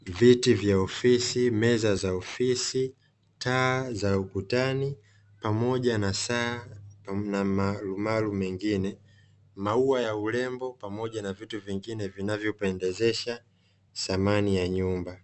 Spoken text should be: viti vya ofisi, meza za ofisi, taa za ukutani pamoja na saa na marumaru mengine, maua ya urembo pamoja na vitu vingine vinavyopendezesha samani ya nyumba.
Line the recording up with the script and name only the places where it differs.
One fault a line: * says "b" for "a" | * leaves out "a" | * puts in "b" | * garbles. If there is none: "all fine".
all fine